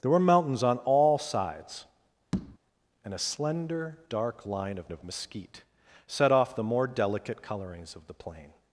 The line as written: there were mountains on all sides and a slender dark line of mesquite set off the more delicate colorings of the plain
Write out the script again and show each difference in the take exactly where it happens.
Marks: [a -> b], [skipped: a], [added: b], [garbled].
there were mountains on all sides and a slender dark line of [added: of] mesquite set off the more delicate colorings of the plain